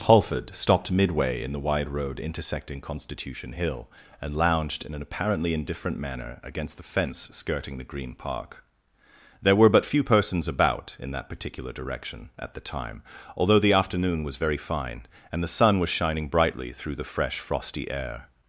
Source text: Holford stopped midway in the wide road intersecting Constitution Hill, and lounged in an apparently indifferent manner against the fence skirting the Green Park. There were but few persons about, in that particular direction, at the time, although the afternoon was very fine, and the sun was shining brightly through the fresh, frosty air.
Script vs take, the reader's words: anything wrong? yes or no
no